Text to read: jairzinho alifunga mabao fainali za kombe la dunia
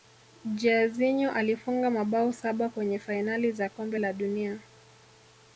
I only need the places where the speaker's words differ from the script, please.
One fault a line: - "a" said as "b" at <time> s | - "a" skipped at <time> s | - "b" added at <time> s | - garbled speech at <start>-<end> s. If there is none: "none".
- "saba kwenye" added at 2.3 s